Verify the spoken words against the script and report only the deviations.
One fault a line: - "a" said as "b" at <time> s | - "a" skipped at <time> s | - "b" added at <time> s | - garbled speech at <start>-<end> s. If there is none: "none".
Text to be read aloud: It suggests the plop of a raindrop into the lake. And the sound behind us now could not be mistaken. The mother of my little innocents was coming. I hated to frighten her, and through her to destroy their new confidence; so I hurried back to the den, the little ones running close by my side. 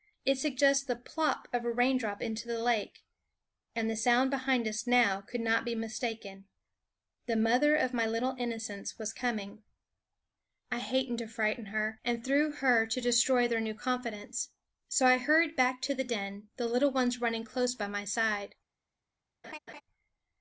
none